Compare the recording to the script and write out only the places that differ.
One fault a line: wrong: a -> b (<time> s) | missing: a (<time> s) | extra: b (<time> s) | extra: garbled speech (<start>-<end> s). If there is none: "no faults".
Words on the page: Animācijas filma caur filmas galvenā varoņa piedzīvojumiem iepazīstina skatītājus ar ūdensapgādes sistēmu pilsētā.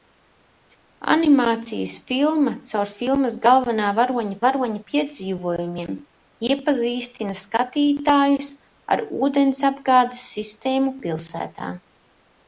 extra: varoņa (4.4 s)